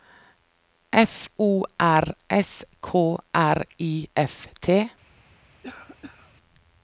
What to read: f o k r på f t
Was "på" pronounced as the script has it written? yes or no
no